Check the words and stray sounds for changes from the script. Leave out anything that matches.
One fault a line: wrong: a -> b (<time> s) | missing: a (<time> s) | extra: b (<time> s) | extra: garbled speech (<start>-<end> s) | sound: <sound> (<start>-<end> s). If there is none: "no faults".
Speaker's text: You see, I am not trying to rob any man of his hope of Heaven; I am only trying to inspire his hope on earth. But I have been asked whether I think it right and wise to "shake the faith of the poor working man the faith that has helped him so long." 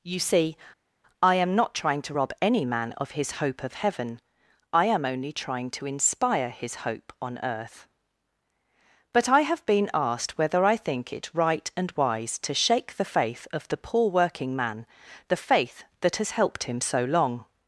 no faults